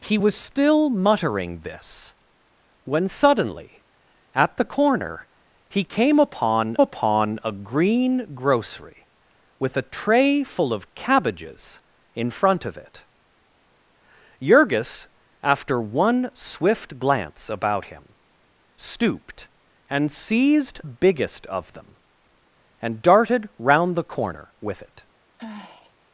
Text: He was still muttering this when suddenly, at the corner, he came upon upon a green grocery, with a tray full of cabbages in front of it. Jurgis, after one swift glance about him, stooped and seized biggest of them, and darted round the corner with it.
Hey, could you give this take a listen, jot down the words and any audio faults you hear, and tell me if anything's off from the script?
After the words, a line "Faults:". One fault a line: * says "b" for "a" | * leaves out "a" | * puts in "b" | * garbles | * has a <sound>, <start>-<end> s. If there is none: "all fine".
He was still muttering this when suddenly, at the corner, he came upon upon a green grocery, with a tray full of cabbages in front of it. Jurgis, after one swift glance about him, stooped and seized biggest of them, and darted round the corner with it.
Faults:
* has a sigh, 25.4-25.9 s